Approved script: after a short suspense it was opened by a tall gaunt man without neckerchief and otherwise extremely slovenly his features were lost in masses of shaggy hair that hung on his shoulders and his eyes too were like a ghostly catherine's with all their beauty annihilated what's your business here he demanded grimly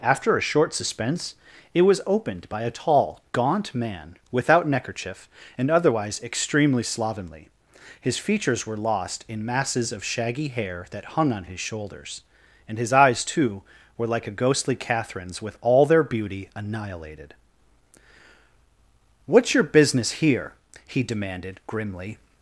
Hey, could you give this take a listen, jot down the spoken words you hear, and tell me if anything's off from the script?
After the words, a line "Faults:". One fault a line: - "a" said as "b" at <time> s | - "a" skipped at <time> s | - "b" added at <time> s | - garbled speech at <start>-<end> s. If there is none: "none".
after a short suspense it was opened by a tall gaunt man without neckerchief and otherwise extremely slovenly his features were lost in masses of shaggy hair that hung on his shoulders and his eyes too were like a ghostly catherine's with all their beauty annihilated what's your business here he demanded grimly
Faults:
none